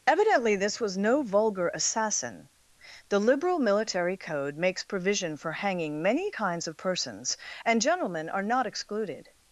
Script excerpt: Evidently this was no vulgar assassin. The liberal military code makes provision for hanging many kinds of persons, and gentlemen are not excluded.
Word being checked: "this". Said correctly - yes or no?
yes